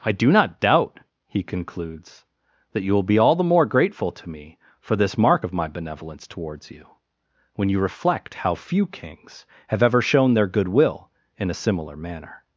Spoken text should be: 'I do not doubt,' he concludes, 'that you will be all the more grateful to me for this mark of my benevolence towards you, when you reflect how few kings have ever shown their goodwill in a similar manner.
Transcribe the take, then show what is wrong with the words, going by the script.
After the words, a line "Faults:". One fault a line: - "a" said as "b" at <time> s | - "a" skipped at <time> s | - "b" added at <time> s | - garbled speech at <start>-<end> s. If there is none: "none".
'I do not doubt,' he concludes, 'that you will be all the more grateful to me for this mark of my benevolence towards you, when you reflect how few kings have ever shown their goodwill in a similar manner.
Faults:
none